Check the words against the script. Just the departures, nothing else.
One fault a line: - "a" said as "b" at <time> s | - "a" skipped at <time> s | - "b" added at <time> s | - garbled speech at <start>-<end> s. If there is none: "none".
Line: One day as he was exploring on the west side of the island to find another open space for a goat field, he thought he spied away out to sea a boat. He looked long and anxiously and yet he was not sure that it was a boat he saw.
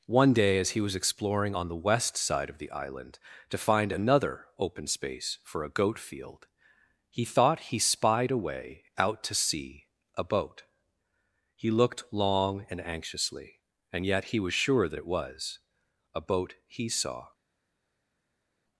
- "not" skipped at 14.5 s